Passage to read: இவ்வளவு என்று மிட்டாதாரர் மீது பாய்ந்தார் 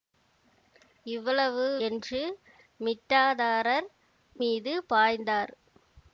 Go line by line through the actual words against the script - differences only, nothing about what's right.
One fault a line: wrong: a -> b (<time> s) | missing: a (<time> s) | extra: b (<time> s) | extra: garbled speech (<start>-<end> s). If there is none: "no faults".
no faults